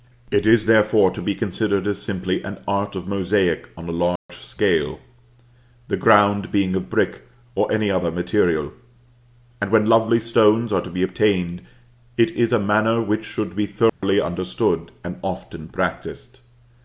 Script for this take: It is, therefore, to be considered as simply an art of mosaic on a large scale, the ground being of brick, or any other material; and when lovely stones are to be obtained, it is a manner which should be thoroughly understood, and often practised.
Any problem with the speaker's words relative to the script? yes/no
no